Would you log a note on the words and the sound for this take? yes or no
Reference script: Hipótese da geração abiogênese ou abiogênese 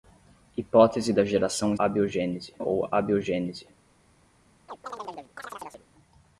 yes